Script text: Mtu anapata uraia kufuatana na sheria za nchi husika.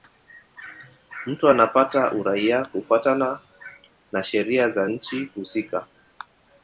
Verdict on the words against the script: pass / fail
pass